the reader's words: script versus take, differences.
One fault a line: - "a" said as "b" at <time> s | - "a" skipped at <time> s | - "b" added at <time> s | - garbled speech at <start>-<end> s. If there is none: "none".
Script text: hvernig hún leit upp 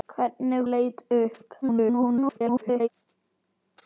- "hún" skipped at 0.7 s
- garbled speech at 1.6-2.9 s